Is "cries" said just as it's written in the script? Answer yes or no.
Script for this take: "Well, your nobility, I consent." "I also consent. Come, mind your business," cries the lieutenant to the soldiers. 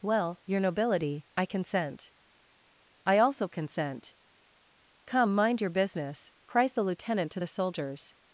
yes